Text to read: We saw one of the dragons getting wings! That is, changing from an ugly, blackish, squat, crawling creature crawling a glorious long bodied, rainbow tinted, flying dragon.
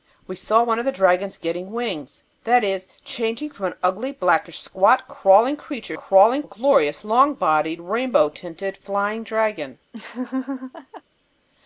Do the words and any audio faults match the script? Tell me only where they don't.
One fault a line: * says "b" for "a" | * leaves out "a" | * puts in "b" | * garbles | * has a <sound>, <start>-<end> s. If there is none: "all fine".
* has a laugh, 9.9-11.0 s